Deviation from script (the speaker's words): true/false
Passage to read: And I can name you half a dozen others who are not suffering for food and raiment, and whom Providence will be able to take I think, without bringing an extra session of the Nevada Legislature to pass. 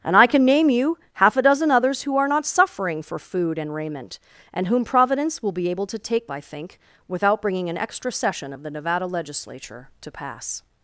false